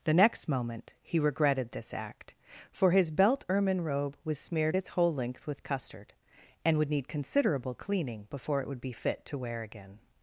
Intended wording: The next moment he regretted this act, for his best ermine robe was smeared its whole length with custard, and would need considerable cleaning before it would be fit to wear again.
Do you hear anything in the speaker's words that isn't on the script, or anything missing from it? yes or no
yes